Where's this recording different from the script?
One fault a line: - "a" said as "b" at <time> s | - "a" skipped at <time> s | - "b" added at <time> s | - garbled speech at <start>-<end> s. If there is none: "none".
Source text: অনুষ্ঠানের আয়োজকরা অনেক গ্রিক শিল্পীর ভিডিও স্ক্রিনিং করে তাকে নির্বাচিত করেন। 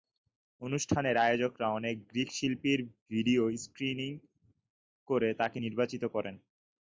none